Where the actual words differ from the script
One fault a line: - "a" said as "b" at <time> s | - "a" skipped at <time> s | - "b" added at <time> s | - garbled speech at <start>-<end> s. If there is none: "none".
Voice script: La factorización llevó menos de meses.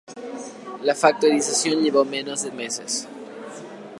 none